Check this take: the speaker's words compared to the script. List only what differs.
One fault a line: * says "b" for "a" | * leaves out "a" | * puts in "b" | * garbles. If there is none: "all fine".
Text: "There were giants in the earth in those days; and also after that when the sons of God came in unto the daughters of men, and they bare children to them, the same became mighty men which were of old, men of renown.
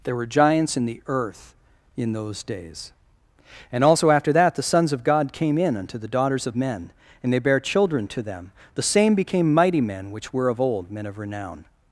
* leaves out "when"